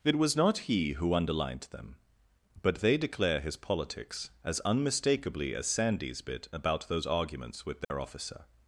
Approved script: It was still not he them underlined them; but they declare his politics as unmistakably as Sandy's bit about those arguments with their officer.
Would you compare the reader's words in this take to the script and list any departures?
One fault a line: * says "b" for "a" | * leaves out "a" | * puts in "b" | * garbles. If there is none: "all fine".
* leaves out "still"
* says "who" for "them"